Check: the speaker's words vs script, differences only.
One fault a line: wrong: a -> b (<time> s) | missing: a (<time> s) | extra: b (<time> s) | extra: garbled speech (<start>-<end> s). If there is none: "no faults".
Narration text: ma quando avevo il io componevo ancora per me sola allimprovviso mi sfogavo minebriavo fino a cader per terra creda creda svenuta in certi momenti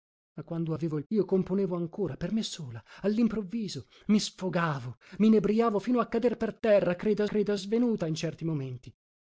no faults